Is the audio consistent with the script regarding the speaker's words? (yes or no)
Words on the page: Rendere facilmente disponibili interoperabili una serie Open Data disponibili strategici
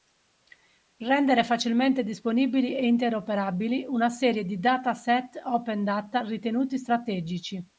no